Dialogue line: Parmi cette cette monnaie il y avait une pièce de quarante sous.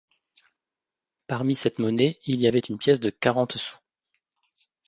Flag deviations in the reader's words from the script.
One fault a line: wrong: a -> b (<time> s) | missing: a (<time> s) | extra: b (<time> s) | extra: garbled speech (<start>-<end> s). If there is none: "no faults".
missing: cette (1.8 s)